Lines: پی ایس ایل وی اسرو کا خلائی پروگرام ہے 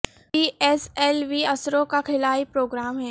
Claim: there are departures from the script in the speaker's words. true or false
false